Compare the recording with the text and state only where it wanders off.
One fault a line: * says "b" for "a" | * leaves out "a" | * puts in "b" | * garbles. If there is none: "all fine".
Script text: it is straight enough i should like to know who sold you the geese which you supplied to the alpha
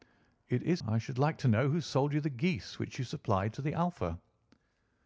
* leaves out "straight enough"